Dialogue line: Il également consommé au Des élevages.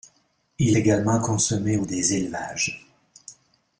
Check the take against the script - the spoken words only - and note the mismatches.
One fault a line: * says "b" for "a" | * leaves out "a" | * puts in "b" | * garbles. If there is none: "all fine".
all fine